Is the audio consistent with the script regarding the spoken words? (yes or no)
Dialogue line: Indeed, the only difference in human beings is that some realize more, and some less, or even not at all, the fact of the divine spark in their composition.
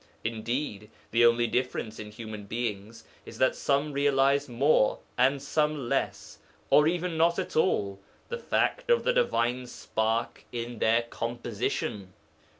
yes